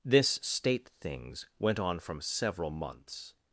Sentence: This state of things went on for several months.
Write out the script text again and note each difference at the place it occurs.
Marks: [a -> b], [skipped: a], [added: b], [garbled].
This state [skipped: of] things went on [for -> from] several months.